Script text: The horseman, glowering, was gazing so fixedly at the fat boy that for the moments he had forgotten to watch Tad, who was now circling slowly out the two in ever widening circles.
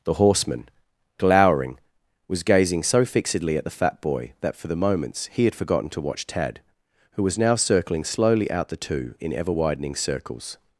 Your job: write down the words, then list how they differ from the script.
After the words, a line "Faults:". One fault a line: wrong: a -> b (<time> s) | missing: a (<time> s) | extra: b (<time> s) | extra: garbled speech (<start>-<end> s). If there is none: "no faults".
The horseman, glowering, was gazing so fixedly at the fat boy that for the moments he had forgotten to watch Tad, who was now circling slowly out the two in ever widening circles.
Faults:
no faults